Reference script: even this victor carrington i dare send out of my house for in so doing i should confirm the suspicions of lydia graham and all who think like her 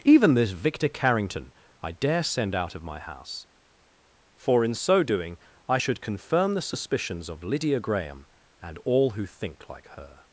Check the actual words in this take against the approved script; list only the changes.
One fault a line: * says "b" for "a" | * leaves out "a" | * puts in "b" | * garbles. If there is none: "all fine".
all fine